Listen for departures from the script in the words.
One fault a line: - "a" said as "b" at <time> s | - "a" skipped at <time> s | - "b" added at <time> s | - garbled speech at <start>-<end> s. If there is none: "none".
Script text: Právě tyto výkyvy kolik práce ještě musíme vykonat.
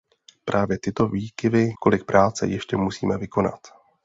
none